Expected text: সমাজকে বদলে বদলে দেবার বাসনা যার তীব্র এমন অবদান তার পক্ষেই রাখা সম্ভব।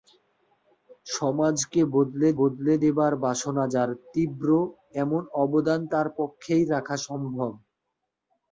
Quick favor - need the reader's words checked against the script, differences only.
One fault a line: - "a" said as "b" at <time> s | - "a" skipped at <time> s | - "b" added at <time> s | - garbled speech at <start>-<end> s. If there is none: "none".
none